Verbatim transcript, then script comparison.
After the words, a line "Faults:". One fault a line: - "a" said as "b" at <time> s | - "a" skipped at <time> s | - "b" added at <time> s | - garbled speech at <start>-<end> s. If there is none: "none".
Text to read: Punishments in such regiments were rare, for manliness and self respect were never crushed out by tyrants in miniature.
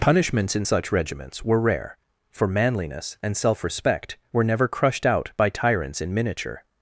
Punishments in such regiments were rare, for manliness and self respect were never crushed out by tyrants in miniature.
Faults:
none